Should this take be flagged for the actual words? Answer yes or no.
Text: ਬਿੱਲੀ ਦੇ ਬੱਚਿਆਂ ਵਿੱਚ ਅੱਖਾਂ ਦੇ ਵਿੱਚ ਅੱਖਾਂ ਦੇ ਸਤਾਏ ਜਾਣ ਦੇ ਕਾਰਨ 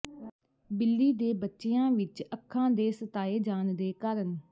yes